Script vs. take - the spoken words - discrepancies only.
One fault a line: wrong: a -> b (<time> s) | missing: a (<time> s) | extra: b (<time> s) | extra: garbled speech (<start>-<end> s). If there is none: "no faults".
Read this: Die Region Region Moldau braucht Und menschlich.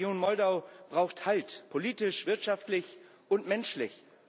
missing: Region (0.2 s)
extra: Halt politisch wirtschaftlich (1.3 s)